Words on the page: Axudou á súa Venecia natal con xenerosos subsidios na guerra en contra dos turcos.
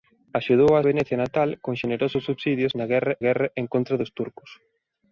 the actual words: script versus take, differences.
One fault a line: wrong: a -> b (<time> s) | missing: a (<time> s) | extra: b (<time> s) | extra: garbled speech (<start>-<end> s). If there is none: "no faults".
missing: súa (0.8 s)
extra: guerra (3.3 s)